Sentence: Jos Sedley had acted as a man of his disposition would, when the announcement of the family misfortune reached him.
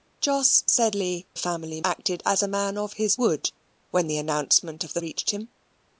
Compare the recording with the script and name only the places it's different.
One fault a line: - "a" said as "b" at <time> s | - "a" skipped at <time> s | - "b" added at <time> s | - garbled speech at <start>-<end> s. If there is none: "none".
- "had" said as "family" at 1.4 s
- "disposition" skipped at 3.2 s
- "family misfortune" skipped at 5.0 s